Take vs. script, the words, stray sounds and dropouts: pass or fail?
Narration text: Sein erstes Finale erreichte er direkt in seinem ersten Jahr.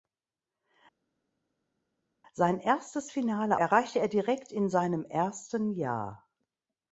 pass